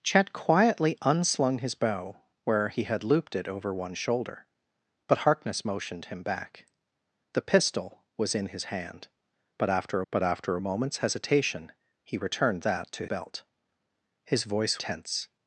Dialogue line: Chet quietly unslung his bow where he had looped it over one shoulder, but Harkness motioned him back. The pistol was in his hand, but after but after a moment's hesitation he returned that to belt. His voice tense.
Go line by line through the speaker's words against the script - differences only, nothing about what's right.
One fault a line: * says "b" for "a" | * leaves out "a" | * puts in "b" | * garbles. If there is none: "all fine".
all fine